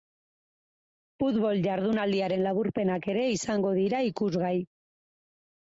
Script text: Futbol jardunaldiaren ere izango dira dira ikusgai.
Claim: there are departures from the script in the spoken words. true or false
true